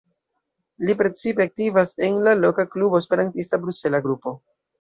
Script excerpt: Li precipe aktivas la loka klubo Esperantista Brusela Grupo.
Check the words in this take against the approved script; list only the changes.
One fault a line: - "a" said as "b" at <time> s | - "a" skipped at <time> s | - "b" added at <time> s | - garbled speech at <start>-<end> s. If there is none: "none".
- "en" added at 2.1 s